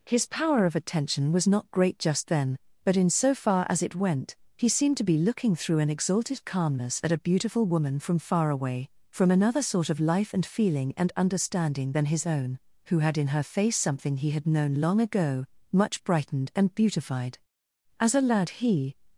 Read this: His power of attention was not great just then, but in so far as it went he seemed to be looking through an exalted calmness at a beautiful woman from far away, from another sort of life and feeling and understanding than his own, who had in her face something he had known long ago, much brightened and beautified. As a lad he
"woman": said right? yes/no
yes